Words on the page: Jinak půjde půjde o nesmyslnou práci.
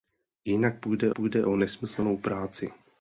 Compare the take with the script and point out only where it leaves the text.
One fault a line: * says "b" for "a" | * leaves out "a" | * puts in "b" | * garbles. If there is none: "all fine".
all fine